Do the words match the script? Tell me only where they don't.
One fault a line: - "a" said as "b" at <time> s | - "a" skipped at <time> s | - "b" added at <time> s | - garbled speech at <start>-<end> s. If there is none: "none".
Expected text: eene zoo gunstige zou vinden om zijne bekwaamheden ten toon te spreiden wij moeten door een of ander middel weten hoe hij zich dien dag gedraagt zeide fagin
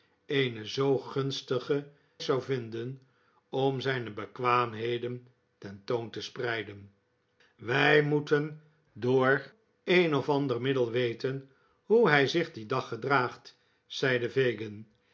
none